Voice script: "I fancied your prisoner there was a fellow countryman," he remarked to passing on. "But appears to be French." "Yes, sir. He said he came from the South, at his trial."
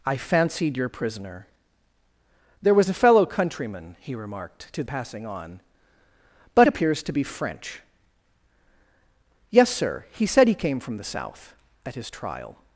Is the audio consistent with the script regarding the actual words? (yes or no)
yes